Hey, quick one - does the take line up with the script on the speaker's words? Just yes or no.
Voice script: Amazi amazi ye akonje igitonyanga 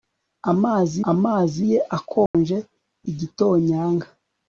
yes